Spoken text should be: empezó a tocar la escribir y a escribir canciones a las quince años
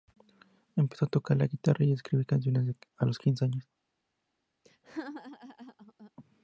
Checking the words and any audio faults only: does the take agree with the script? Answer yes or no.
no